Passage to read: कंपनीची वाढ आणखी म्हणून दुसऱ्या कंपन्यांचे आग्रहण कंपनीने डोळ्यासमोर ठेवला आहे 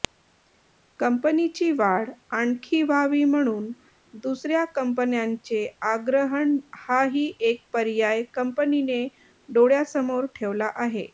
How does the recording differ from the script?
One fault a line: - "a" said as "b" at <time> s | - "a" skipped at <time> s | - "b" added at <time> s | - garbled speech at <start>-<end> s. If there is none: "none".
- "व्हावी" added at 2.8 s
- "हाही एक पर्याय" added at 6.8 s